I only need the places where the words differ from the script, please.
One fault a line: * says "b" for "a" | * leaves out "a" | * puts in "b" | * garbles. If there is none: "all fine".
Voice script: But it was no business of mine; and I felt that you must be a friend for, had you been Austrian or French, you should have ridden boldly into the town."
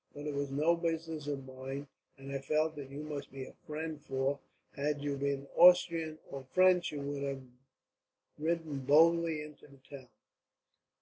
* says "would" for "should"